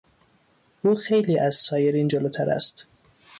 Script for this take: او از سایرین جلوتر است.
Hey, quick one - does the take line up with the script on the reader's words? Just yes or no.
no